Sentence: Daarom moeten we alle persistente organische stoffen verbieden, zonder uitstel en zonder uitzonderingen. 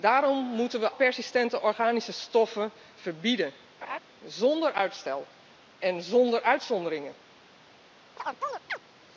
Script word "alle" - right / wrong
wrong